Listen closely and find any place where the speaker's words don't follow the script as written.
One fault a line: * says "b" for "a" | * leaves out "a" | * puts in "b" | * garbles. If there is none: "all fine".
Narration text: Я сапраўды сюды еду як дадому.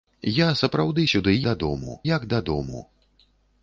* says "дадому" for "еду"